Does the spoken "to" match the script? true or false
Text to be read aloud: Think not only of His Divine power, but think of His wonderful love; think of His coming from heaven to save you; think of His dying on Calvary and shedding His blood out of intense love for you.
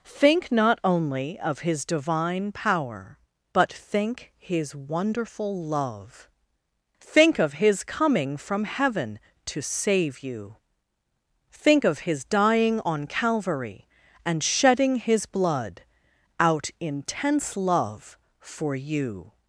true